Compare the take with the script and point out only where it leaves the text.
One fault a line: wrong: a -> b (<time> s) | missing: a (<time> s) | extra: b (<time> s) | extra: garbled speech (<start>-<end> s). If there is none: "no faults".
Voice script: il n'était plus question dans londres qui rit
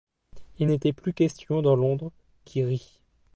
no faults